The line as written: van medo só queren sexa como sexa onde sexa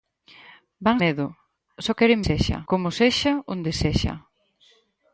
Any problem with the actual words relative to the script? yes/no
no